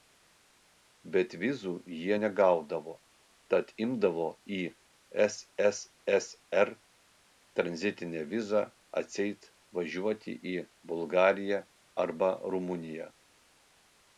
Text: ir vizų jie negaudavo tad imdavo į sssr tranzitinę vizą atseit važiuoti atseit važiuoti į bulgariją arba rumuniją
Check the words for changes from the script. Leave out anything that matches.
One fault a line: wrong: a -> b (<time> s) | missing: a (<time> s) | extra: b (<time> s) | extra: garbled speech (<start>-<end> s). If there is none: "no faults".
wrong: ir -> bet (1.1 s)
missing: atseit važiuoti (10.4 s)